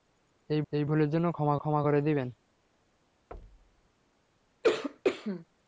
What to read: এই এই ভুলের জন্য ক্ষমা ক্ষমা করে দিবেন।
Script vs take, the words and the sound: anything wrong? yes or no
yes